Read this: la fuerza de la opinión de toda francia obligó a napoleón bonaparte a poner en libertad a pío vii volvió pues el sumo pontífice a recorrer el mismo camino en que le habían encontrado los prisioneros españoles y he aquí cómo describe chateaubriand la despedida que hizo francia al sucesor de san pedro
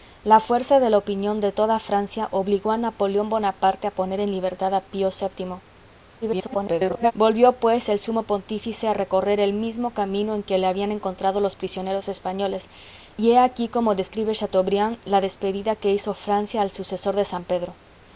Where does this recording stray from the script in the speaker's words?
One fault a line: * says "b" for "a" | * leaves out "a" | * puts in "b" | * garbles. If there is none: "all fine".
* garbles